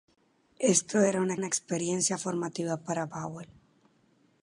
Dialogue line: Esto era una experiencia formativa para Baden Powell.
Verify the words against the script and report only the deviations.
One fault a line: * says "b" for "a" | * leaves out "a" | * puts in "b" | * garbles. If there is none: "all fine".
* puts in "una"
* leaves out "Baden"